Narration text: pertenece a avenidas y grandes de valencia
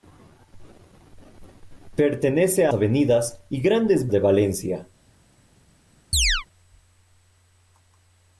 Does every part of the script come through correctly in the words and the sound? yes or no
no